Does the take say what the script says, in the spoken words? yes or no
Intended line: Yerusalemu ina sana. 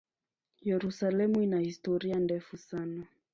no